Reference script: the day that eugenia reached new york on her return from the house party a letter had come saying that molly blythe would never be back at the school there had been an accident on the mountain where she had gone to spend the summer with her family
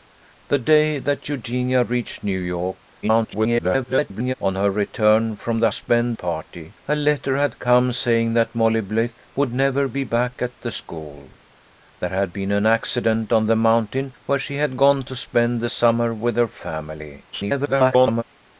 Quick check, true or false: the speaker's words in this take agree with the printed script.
false